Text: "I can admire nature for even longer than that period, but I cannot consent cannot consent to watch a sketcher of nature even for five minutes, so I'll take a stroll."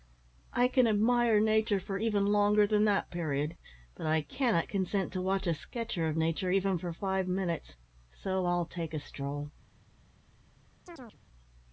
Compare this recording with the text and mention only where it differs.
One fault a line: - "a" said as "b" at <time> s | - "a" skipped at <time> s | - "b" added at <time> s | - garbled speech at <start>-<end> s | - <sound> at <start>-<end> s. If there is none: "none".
- "cannot consent" skipped at 5.1 s
- chirp at 10.9-11.2 s